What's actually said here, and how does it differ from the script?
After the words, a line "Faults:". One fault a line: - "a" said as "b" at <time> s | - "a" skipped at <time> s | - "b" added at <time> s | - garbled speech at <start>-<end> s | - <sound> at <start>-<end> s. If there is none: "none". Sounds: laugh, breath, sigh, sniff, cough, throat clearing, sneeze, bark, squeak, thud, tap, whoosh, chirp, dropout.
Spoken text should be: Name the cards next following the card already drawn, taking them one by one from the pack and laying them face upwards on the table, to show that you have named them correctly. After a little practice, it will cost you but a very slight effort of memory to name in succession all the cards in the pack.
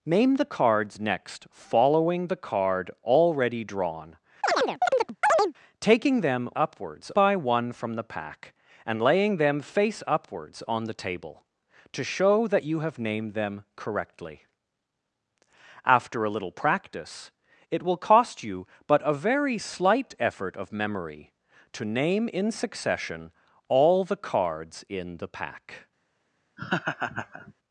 Name the cards next following the card already drawn, taking them upwards by one from the pack and laying them face upwards on the table, to show that you have named them correctly. After a little practice, it will cost you but a very slight effort of memory to name in succession all the cards in the pack.
Faults:
- chirp at 4.4-5.5 s
- "one" said as "upwards" at 6.6 s
- laugh at 26.6-27.5 s